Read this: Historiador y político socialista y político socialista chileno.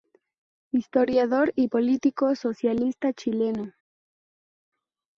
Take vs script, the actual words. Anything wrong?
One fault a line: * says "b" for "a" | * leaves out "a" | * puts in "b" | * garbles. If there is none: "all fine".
* leaves out "y político socialista"